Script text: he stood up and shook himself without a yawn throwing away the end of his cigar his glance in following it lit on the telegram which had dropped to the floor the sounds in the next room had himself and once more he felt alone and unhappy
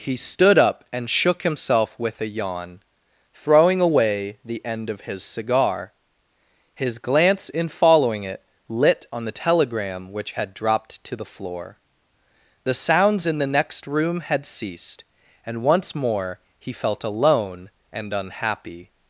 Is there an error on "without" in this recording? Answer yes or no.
yes